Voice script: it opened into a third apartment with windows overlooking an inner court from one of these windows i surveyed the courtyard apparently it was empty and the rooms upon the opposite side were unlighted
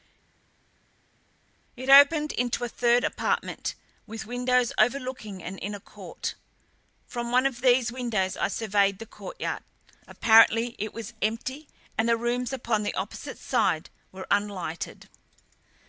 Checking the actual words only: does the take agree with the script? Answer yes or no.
yes